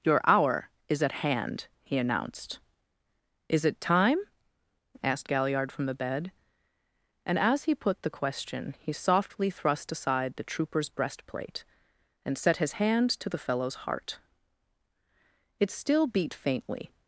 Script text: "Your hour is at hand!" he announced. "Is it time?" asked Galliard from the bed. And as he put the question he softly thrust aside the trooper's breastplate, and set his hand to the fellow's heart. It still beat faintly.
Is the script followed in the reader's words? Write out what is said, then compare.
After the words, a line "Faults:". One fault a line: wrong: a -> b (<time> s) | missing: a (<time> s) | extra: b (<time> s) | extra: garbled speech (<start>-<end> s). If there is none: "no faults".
"Your hour is at hand!" he announced. "Is it time?" asked Galliard from the bed. And as he put the question he softly thrust aside the trooper's breastplate, and set his hand to the fellow's heart. It still beat faintly.
Faults:
no faults